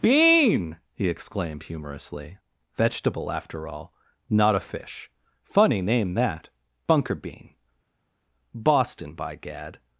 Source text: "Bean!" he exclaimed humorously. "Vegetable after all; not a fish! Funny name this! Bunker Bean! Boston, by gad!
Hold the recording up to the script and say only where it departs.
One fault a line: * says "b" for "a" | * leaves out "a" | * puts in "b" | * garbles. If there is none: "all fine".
* says "that" for "this"